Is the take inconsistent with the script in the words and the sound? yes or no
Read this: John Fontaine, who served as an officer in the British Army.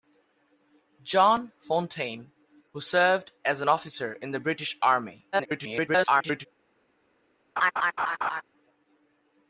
yes